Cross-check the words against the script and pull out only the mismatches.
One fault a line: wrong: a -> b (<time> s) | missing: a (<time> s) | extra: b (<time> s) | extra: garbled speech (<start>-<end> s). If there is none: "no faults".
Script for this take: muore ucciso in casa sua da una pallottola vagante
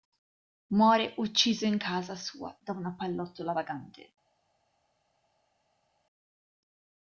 no faults